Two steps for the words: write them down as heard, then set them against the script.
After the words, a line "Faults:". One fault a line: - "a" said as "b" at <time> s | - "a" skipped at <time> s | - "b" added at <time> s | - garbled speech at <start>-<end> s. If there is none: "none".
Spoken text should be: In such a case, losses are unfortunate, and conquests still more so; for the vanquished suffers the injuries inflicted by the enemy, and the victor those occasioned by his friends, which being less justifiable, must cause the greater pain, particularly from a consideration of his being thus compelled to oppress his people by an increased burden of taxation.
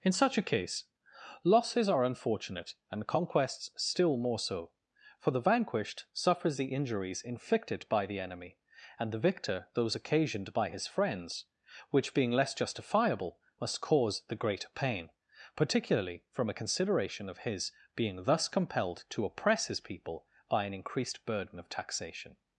In such a case, losses are unfortunate, and conquests still more so; for the vanquished suffers the injuries inflicted by the enemy, and the victor those occasioned by his friends, which being less justifiable, must cause the greater pain, particularly from a consideration of his being thus compelled to oppress his people by an increased burden of taxation.
Faults:
none